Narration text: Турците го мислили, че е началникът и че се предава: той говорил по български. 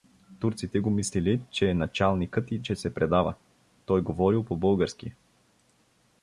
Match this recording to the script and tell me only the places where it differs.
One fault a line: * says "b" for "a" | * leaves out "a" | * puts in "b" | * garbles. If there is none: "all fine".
all fine